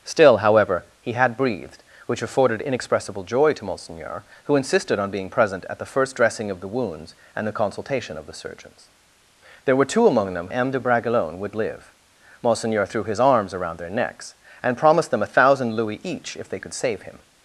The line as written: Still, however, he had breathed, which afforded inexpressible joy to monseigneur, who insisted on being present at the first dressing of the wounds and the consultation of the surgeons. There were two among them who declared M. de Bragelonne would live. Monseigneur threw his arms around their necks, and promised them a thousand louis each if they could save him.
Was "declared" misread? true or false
true